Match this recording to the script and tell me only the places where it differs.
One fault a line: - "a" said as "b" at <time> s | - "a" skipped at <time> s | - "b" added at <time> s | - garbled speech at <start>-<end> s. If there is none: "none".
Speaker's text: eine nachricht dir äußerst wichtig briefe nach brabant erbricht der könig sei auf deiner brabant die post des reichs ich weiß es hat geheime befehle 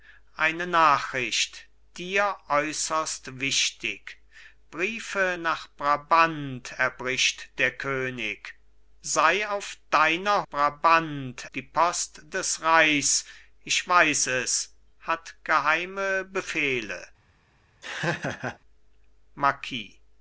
none